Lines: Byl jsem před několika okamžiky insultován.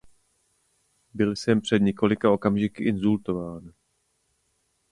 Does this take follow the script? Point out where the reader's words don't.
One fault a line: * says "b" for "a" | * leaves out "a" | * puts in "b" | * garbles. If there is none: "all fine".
all fine